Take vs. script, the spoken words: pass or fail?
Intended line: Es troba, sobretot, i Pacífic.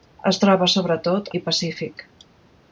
pass